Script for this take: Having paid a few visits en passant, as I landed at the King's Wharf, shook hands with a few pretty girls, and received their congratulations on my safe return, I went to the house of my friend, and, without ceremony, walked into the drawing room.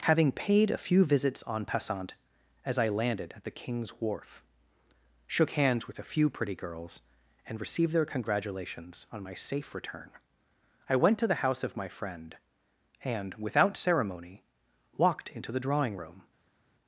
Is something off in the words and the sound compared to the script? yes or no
no